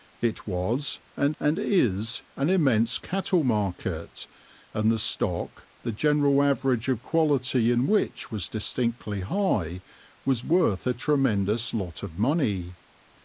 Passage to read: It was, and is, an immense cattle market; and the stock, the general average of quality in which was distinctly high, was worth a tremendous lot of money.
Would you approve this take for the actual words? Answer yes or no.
no